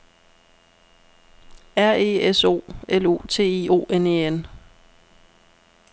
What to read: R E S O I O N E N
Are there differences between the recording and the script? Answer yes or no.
yes